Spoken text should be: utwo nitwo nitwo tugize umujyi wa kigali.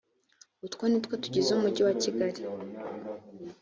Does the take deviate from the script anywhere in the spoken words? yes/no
yes